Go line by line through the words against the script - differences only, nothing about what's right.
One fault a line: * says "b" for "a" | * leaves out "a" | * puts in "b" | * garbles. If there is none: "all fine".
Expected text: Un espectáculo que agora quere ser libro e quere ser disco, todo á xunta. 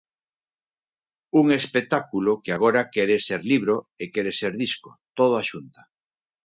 all fine